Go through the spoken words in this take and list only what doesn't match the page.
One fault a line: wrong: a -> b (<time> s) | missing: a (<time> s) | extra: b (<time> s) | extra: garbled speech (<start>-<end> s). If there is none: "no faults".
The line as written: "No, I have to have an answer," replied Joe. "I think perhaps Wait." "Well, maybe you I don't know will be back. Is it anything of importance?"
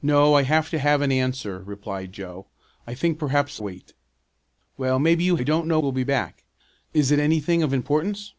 no faults